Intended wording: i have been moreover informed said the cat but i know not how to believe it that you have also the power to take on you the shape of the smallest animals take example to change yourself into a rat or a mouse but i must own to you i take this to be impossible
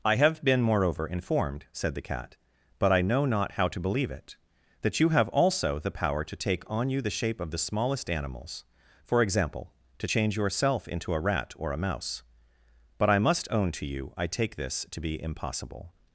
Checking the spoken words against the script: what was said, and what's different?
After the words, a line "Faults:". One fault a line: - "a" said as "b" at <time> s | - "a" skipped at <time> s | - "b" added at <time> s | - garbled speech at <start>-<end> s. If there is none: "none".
i have been moreover informed said the cat but i know not how to believe it that you have also the power to take on you the shape of the smallest animals for example to change yourself into a rat or a mouse but i must own to you i take this to be impossible
Faults:
- "take" said as "for" at 9.0 s